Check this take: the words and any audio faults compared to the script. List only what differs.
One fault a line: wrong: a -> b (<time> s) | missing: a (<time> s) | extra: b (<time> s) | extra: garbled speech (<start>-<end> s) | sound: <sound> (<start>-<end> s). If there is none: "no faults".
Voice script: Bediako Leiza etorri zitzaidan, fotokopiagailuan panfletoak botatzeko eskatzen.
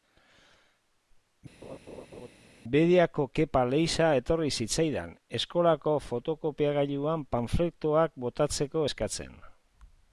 sound: laugh (1.6-2.3 s)
extra: Kepa (3.4 s)
extra: eskolako (5.4 s)